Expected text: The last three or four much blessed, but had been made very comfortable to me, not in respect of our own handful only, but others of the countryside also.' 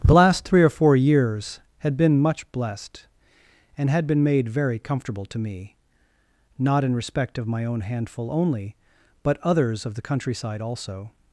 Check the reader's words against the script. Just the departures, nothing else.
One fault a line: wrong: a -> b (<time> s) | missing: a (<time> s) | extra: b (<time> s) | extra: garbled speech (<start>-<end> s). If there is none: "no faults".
extra: years had been (0.9 s)
wrong: but -> and (3.8 s)
wrong: our -> my (7.5 s)